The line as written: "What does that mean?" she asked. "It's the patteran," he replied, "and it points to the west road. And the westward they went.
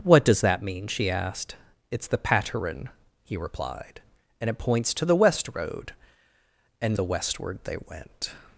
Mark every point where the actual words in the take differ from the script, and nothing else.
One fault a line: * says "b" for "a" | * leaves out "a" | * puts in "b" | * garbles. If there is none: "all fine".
all fine